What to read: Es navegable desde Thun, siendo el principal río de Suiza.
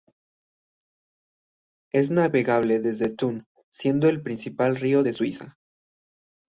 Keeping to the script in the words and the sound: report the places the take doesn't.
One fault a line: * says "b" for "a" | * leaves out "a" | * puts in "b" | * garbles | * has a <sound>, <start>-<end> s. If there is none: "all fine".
all fine